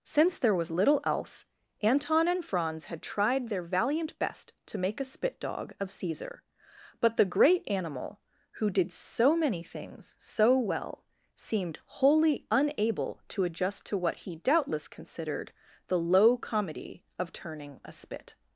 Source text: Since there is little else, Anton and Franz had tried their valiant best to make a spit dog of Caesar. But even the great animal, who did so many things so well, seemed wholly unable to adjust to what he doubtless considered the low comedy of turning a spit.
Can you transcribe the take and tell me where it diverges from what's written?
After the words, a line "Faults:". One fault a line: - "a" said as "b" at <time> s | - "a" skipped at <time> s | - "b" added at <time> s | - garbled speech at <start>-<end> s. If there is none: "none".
Since there was little else, Anton and Franz had tried their valiant best to make a spit dog of Caesar. But the great animal, who did so many things so well, seemed wholly unable to adjust to what he doubtless considered the low comedy of turning a spit.
Faults:
- "is" said as "was" at 0.6 s
- "even" skipped at 7.2 s